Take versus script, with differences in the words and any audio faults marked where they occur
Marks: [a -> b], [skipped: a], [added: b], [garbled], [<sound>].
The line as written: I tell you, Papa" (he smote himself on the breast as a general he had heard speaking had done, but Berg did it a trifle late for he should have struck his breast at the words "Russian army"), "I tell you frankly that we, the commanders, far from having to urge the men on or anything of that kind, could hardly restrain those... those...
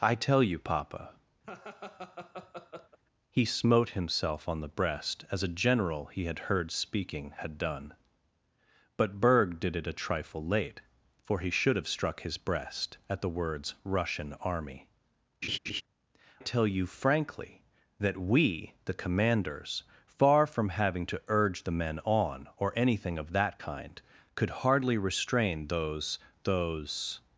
I tell you, Papa" [laugh] (he smote himself on the breast as a general he had heard speaking had done, but Berg did it a trifle late for he should have struck his breast at the words "Russian army"), [skipped: "I] [laugh] tell you frankly that we, the commanders, far from having to urge the men on or anything of that kind, could hardly restrain those... those...